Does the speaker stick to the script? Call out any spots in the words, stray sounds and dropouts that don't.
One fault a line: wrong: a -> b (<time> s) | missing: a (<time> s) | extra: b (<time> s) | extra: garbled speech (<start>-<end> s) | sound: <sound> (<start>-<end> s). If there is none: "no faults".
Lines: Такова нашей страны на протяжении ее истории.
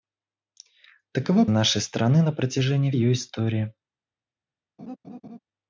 sound: laugh (4.8-5.4 s)